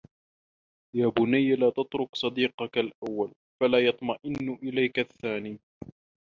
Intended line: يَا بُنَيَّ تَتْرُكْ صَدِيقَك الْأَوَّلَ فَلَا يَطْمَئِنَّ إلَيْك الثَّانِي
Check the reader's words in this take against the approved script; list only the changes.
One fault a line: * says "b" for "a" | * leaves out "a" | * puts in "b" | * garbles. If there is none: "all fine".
* puts in "لَا"